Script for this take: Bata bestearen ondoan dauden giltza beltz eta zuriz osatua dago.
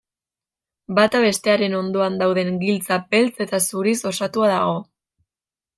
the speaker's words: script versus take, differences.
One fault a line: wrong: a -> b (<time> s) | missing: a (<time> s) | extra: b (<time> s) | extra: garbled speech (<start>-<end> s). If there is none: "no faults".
no faults